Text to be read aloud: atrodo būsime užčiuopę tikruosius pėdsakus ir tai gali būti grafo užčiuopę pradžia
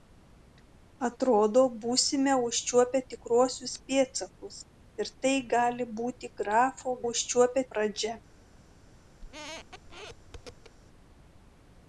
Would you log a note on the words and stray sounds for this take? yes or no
yes